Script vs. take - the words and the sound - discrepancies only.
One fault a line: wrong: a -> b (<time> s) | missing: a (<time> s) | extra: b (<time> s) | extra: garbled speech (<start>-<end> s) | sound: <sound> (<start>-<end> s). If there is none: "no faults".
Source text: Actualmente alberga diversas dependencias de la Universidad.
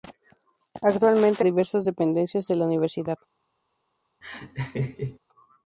missing: alberga (1.4 s)
sound: laugh (4.2-5.2 s)